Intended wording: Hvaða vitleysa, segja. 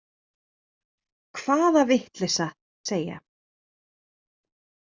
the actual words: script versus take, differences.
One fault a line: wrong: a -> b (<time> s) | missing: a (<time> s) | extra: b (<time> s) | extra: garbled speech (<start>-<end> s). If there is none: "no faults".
no faults